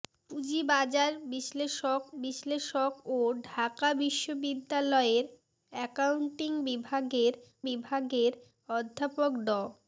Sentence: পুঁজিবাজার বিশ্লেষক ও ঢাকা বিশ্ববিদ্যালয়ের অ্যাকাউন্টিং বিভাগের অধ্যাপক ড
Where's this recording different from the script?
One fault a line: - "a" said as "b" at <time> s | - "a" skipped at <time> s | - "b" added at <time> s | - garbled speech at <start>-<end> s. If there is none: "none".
- "বিশ্লেষক" added at 2.2 s
- "বিভাগের" added at 7.7 s